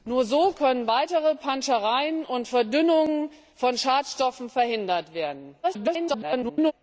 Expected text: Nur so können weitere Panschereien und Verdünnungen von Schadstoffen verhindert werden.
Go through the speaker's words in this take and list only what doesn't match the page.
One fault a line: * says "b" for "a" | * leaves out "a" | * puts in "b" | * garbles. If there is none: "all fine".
* garbles